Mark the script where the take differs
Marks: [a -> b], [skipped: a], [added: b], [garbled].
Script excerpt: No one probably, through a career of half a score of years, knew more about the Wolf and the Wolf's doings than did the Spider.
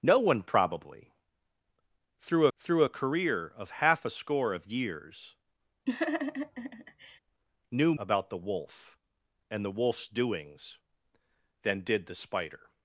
No one probably, through [added: through] a career of half a score of years, knew [skipped: more] about the Wolf and the Wolf's doings than did the Spider.